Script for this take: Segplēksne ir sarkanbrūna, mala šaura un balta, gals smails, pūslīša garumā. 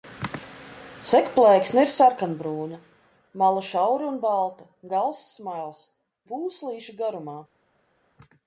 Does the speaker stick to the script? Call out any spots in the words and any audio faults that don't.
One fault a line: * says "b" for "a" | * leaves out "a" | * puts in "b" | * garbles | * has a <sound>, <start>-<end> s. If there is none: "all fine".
all fine